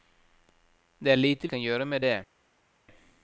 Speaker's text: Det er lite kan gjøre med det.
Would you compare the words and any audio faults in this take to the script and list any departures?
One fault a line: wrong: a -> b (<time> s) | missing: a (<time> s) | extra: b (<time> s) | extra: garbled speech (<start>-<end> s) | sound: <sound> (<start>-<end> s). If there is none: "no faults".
no faults